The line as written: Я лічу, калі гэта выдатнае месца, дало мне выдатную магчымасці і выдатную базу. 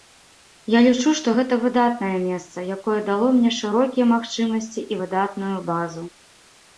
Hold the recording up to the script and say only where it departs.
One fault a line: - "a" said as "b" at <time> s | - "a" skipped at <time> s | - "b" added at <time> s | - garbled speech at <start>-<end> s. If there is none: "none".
- "калі" said as "што" at 1.2 s
- "якое" added at 2.8 s
- "выдатную" said as "шырокія" at 3.6 s